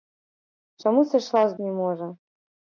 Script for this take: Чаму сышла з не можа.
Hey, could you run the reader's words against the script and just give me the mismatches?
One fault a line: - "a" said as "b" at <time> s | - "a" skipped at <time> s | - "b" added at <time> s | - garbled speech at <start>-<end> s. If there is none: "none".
none